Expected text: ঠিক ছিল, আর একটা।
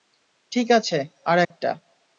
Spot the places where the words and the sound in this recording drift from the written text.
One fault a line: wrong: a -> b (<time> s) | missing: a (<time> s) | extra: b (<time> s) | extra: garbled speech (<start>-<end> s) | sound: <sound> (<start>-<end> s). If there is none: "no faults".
wrong: ছিল -> আছে (0.7 s)
sound: dropout (1.4-1.5 s)